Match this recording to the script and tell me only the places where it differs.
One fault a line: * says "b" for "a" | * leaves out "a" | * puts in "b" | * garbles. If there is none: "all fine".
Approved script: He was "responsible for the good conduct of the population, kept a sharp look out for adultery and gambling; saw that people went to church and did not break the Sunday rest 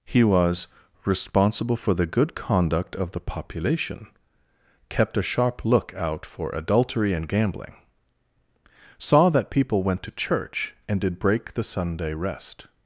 * leaves out "not"